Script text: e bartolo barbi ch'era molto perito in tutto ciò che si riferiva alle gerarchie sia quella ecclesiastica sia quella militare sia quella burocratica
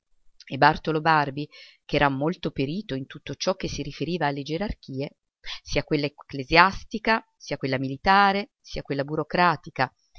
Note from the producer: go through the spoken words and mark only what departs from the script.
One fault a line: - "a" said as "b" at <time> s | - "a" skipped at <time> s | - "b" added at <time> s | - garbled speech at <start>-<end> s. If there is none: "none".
none